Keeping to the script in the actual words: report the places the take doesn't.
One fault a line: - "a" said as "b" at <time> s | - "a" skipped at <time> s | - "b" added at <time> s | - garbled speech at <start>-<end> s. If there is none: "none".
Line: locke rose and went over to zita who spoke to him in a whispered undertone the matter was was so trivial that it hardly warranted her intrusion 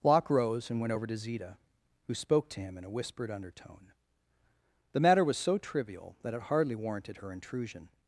- "was" skipped at 5.4 s